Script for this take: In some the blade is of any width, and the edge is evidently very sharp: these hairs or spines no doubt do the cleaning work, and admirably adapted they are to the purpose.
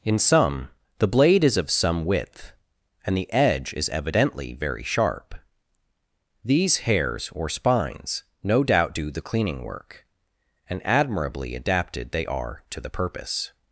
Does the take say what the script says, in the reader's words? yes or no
no